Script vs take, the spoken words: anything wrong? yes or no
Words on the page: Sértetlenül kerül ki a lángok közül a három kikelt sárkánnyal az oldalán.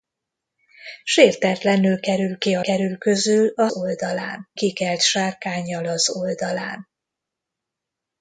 yes